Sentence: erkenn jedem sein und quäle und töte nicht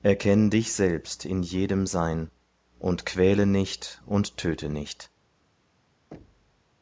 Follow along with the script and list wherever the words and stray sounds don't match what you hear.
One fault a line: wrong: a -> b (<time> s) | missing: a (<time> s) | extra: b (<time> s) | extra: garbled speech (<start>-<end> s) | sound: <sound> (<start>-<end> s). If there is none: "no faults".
extra: dich selbst in (0.5 s)
extra: nicht (3.5 s)
sound: thud (6.1-6.8 s)